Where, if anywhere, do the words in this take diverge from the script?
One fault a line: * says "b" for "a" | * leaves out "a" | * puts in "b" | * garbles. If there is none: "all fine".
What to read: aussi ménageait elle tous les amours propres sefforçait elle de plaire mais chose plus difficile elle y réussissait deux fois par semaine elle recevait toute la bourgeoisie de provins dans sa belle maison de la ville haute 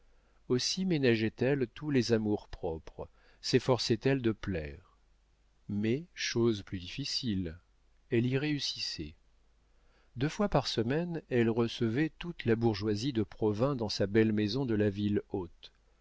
all fine